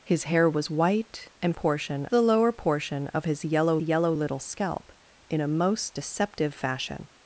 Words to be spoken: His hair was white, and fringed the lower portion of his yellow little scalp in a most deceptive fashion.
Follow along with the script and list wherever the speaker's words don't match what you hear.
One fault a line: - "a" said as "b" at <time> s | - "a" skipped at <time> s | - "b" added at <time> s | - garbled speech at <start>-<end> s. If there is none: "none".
- "fringed" said as "portion" at 1.5 s
- "yellow" added at 3.8 s